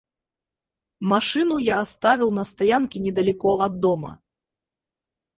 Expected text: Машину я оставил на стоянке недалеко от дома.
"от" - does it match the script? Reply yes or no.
yes